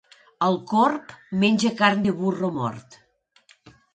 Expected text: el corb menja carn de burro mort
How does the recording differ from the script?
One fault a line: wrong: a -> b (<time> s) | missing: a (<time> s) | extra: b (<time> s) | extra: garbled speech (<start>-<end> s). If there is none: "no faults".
no faults